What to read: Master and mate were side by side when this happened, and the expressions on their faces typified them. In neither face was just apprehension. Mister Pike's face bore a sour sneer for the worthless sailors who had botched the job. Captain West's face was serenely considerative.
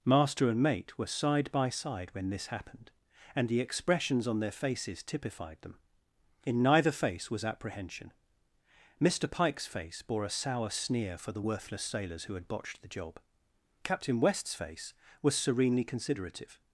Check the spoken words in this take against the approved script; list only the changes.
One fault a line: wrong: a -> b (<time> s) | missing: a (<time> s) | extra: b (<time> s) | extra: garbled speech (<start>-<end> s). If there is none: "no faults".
missing: just (7.5 s)